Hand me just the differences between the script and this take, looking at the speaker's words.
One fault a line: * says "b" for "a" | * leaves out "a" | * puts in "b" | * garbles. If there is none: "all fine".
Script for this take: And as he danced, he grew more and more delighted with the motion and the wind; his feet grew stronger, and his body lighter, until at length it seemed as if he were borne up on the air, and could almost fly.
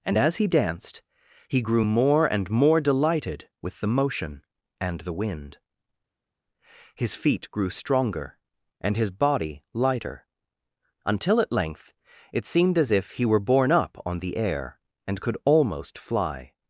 all fine